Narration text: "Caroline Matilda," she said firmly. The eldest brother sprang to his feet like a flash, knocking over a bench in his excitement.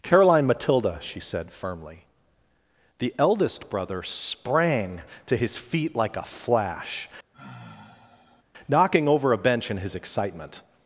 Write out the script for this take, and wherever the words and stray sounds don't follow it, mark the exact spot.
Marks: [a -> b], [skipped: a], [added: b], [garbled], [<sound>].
"Caroline Matilda," she said firmly. The eldest brother sprang to his feet like a flash, [sigh] knocking over a bench in his excitement.